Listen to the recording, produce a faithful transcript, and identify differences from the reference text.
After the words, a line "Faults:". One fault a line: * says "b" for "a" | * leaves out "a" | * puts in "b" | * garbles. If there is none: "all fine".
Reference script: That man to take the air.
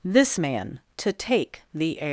This man to take the air.
Faults:
* says "This" for "That"